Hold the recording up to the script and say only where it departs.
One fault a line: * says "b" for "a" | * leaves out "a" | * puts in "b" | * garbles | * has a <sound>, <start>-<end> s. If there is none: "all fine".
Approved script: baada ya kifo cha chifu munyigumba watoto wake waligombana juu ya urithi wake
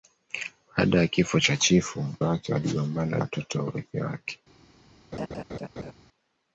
* leaves out "munyigumba watoto"
* says "watoto" for "juu"
* has a laugh, 5.1-5.9 s